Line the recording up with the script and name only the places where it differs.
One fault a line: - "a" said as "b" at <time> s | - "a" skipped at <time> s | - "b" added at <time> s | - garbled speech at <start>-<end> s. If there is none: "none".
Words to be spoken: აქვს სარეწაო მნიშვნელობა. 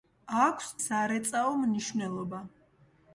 none